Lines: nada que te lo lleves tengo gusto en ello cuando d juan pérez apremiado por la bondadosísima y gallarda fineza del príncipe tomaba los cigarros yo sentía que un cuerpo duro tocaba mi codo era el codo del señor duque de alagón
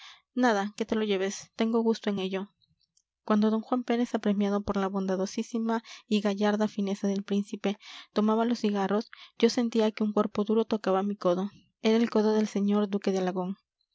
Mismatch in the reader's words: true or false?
false